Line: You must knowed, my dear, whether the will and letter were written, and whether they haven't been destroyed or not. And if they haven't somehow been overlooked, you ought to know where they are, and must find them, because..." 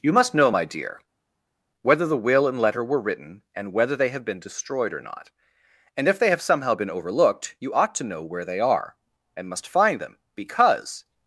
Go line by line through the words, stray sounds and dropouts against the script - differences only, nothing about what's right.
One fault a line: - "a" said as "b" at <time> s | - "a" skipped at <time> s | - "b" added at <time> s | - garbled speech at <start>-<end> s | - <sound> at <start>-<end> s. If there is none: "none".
- "knowed" said as "know" at 0.3 s
- "haven't" said as "have" at 4.1 s
- "haven't" said as "have" at 6.3 s